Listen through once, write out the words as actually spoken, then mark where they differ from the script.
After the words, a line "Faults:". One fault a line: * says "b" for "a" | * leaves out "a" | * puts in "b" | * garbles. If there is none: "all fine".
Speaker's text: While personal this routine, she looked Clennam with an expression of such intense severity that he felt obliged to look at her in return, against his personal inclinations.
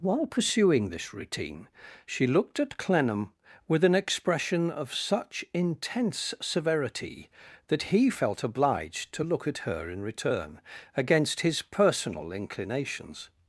While pursuing this routine, she looked at Clennam with an expression of such intense severity that he felt obliged to look at her in return, against his personal inclinations.
Faults:
* says "pursuing" for "personal"
* puts in "at"